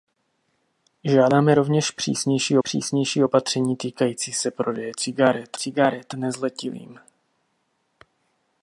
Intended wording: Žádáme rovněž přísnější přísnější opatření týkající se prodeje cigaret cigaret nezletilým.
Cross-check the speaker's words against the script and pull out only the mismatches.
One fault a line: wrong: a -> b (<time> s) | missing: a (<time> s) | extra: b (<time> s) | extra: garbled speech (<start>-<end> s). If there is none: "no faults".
no faults